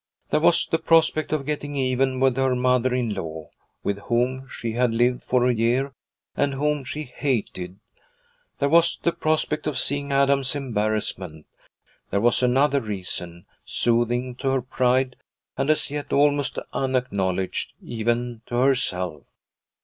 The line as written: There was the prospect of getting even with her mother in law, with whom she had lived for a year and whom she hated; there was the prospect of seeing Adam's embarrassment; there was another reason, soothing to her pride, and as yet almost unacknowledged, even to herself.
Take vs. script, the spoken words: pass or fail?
pass